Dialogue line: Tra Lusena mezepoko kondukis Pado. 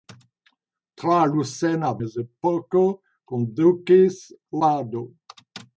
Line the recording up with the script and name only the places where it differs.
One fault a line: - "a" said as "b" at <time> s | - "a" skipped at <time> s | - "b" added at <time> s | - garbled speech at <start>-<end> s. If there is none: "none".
none